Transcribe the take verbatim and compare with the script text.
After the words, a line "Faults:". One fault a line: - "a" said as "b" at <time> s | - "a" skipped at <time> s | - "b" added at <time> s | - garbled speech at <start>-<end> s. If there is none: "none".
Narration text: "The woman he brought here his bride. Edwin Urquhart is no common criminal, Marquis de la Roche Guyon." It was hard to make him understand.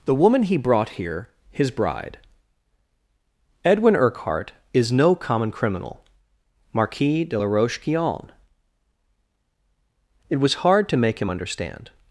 "The woman he brought here his bride. Edwin Urquhart is no common criminal, Marquis de la Roche Guyon." It was hard to make him understand.
Faults:
none